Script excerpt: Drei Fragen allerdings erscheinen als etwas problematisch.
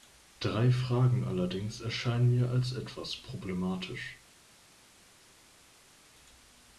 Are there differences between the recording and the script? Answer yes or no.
yes